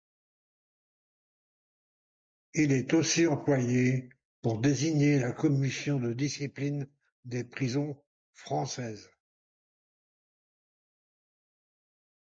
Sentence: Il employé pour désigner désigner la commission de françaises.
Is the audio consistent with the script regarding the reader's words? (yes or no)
no